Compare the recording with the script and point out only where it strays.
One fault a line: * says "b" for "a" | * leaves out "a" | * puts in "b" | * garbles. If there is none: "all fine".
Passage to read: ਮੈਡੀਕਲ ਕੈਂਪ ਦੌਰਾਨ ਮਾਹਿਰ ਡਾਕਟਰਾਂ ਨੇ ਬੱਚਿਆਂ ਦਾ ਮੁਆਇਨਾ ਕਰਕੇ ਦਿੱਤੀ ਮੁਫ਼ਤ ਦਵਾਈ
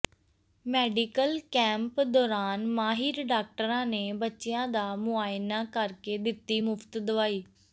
all fine